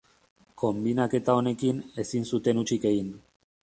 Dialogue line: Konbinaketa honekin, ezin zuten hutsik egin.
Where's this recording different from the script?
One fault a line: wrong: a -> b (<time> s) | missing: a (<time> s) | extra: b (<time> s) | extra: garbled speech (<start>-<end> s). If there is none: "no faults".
no faults